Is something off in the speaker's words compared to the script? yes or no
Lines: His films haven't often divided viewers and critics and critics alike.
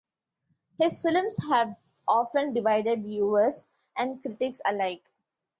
yes